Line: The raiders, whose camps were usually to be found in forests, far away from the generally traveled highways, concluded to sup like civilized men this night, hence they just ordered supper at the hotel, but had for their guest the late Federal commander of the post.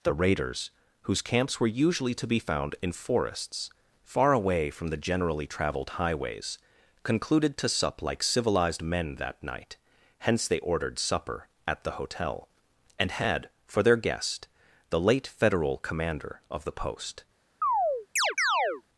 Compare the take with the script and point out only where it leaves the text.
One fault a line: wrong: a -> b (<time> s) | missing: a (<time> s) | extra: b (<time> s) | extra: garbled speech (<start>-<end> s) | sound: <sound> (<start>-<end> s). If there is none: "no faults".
wrong: this -> that (9.2 s)
missing: just (10.6 s)
wrong: but -> and (13.0 s)
sound: chirp (17.6-18.8 s)